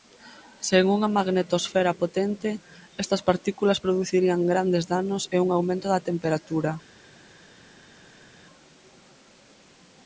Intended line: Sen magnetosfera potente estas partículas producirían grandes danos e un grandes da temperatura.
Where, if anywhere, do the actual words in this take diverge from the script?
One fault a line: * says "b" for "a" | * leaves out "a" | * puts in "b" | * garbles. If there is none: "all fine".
* puts in "unha"
* says "aumento" for "grandes"